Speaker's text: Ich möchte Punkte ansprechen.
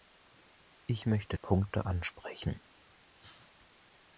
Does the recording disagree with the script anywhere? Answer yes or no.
no